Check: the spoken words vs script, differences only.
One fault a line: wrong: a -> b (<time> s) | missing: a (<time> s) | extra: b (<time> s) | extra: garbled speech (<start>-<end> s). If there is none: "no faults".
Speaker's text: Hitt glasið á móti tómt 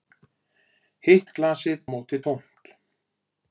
no faults